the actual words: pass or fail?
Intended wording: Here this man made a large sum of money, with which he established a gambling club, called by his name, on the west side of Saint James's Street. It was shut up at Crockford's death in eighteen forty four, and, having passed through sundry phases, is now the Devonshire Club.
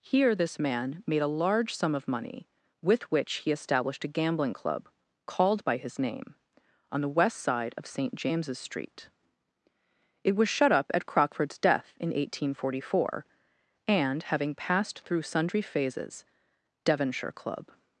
fail